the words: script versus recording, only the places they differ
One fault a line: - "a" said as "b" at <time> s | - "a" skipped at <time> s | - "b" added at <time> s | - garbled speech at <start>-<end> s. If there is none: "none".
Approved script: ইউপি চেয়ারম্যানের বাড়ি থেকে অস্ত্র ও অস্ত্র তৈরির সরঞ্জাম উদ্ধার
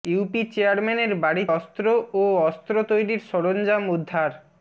- "থেকে" skipped at 1.4 s